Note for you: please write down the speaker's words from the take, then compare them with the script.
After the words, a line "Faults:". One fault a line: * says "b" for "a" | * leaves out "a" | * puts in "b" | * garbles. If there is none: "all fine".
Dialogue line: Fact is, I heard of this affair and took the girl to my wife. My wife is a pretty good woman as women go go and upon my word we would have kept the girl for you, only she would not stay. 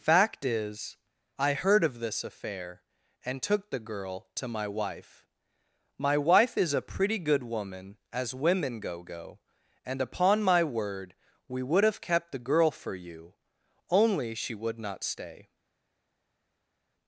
Fact is, I heard of this affair and took the girl to my wife. My wife is a pretty good woman as women go go and upon my word we would have kept the girl for you, only she would not stay.
Faults:
all fine